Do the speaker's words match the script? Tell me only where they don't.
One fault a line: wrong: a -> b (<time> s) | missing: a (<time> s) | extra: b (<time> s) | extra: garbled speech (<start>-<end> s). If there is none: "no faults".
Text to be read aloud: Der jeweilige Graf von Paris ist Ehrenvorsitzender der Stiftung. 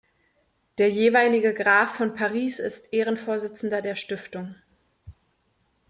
no faults